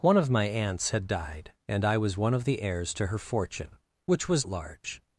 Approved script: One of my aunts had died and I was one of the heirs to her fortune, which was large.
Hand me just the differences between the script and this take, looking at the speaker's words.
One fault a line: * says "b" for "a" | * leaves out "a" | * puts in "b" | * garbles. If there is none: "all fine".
all fine